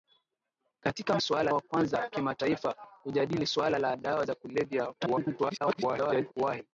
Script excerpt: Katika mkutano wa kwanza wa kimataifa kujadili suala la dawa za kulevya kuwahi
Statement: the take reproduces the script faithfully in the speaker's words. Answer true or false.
false